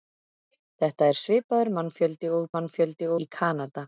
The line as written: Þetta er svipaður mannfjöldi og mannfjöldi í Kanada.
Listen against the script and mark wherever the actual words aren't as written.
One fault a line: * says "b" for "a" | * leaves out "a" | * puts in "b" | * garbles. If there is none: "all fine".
all fine